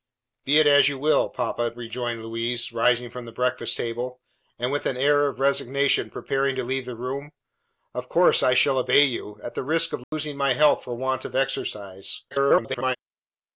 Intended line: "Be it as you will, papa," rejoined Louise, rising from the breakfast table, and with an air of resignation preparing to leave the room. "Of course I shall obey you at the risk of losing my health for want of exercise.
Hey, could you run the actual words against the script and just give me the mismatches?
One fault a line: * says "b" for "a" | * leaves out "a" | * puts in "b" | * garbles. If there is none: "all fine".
* garbles